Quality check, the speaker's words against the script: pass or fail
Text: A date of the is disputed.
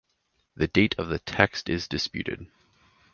fail